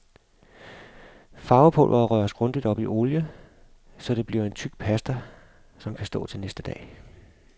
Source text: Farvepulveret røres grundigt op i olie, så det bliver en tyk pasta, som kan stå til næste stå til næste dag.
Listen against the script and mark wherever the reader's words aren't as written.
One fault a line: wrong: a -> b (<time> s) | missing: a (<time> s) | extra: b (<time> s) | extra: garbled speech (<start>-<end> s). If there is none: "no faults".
missing: stå til næste (6.6 s)